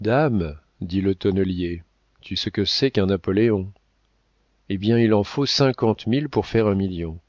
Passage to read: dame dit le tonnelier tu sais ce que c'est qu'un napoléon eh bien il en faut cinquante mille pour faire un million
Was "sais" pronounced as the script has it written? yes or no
no